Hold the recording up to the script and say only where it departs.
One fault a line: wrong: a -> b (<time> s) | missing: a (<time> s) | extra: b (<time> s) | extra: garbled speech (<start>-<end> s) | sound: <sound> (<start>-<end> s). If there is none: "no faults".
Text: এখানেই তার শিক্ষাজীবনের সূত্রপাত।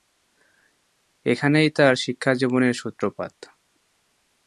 no faults